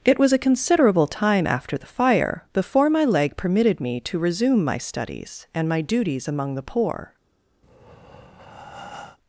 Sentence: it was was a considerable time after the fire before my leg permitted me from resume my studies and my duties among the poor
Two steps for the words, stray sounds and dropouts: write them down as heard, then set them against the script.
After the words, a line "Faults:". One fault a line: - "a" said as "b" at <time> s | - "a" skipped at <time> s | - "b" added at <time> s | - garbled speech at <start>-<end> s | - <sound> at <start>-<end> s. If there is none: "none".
it was a considerable time after the fire before my leg permitted me to resume my studies and my duties among the poor
Faults:
- "was" skipped at 0.3 s
- "from" said as "to" at 4.0 s
- breath at 7.6-9.2 s